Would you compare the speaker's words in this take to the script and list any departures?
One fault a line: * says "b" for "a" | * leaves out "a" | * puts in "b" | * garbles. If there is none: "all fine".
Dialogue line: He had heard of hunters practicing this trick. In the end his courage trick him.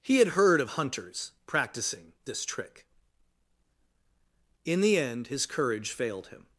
* says "failed" for "trick"